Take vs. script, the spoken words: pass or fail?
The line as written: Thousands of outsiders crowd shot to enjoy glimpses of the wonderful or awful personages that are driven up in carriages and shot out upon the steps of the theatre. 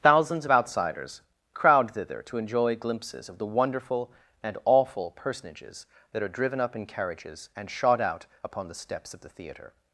fail